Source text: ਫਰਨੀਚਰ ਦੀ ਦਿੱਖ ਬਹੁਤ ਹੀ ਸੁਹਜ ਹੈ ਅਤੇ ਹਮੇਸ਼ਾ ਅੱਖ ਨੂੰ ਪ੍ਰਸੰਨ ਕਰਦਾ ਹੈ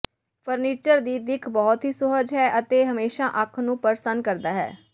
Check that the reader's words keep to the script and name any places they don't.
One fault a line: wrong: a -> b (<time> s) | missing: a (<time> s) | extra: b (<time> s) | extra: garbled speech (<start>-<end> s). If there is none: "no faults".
no faults